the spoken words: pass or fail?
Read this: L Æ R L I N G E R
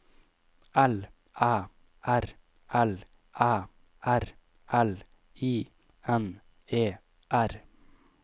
fail